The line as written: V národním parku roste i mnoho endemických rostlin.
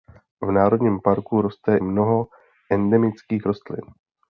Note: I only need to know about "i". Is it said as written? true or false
false